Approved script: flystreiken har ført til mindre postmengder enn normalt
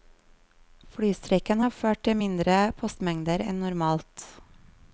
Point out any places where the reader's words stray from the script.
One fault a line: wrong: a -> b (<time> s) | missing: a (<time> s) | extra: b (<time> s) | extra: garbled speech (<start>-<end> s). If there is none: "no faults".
no faults